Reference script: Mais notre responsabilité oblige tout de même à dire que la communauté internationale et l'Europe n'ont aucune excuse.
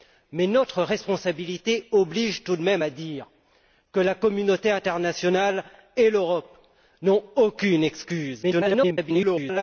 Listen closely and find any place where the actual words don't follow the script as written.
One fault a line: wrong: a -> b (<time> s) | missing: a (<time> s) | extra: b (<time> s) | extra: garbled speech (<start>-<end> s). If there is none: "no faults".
extra: garbled speech (8.4-9.6 s)